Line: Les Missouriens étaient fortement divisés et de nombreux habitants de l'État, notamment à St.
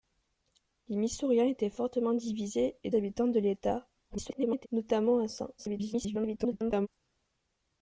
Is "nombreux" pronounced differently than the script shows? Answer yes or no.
yes